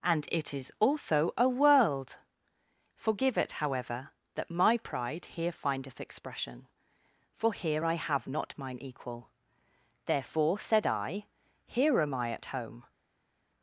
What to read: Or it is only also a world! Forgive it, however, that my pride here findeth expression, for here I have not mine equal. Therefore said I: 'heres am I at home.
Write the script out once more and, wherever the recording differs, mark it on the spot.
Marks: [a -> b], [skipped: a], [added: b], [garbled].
[Or -> And] it is [skipped: only] also a world! Forgive it, however, that my pride here findeth expression, for here I have not mine equal. Therefore said I: ['heres -> here] am I at home.